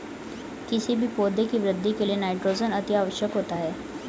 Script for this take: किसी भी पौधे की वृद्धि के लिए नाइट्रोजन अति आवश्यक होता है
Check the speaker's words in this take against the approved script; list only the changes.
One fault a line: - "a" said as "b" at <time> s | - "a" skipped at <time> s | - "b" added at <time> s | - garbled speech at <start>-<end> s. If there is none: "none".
none